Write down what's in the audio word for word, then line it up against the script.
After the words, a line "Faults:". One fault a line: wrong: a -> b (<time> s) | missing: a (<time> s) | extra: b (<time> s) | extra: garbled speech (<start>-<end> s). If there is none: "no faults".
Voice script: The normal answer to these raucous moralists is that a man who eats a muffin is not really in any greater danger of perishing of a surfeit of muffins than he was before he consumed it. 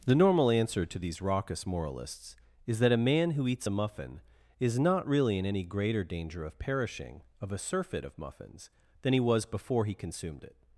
The normal answer to these raucous moralists is that a man who eats a muffin is not really in any greater danger of perishing of a surfeit of muffins than he was before he consumed it.
Faults:
no faults